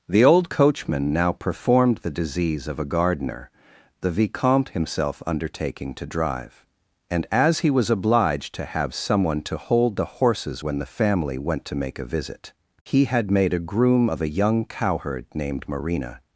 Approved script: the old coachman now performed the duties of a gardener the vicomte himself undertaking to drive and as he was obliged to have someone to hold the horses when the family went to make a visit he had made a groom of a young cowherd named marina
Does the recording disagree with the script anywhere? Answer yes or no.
yes